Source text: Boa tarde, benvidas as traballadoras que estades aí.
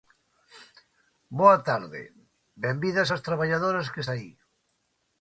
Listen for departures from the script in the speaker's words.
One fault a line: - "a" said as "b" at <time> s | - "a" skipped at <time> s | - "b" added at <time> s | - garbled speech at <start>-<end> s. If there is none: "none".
- "estades" skipped at 4.0 s